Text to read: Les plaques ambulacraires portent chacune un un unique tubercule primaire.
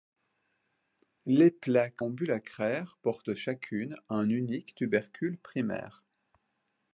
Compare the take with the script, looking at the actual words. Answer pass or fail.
fail